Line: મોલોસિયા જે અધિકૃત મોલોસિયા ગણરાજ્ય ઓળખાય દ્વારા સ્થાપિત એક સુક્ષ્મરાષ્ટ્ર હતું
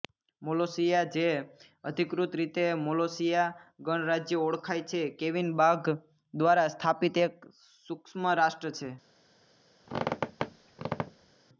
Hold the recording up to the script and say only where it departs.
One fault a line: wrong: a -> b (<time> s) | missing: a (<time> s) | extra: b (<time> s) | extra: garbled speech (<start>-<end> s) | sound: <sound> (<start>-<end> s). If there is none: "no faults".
extra: રીતે (2.4 s)
extra: છે કેવિન બાઘ (4.9 s)
wrong: હતું -> છે (8.8 s)
sound: squeak (9.8-11.4 s)